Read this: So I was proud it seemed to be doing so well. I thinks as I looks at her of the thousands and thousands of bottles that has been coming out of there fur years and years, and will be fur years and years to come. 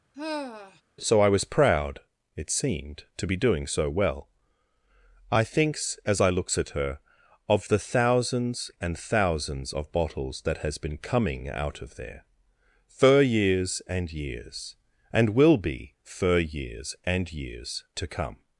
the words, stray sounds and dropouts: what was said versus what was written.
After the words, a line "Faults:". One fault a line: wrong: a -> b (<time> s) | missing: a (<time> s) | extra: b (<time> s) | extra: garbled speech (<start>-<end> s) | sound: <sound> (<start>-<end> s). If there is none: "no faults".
So I was proud it seemed to be doing so well. I thinks as I looks at her of the thousands and thousands of bottles that has been coming out of there fur years and years, and will be fur years and years to come.
Faults:
sound: sigh (0.1-0.8 s)